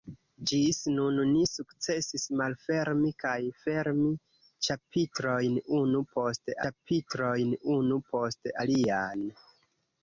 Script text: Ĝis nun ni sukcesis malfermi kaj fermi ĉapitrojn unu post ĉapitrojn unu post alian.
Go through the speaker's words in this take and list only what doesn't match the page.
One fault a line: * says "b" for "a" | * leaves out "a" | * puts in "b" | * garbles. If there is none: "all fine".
all fine